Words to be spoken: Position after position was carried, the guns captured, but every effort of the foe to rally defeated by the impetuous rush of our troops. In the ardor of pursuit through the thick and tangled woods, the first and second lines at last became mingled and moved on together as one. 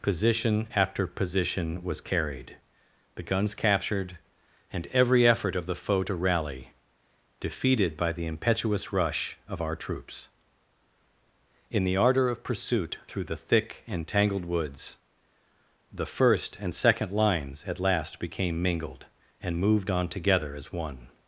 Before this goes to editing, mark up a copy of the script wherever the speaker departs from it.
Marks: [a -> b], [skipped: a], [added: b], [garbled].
Position after position was carried, the guns captured, [but -> and] every effort of the foe to rally defeated by the impetuous rush of our troops. In the ardor of pursuit through the thick and tangled woods, the first and second lines at last became mingled and moved on together as one.